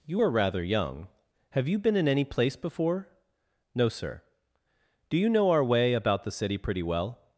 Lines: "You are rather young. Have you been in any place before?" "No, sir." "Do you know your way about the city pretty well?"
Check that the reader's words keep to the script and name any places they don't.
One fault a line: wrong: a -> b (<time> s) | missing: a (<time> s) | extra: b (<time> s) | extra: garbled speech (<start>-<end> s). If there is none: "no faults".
wrong: your -> our (5.5 s)